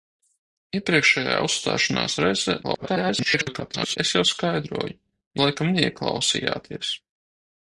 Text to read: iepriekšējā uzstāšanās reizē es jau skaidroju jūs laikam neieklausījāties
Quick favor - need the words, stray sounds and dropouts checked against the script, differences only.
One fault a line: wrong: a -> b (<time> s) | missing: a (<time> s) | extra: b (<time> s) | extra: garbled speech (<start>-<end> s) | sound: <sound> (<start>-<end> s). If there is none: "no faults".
extra: garbled speech (2.6-4.0 s)
missing: jūs (4.9 s)